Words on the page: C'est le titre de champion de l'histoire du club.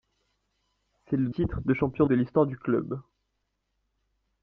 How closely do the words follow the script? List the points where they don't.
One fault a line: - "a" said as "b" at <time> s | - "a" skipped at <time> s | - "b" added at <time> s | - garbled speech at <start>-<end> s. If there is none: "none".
none